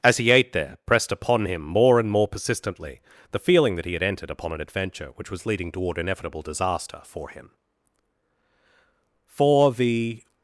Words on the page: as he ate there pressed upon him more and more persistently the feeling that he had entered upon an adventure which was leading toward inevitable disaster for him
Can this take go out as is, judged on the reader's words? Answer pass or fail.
fail